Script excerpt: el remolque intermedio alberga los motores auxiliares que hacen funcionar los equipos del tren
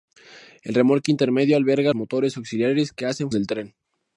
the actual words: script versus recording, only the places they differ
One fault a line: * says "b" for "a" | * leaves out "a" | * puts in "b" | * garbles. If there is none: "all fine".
* leaves out "los"
* leaves out "funcionar los equipos"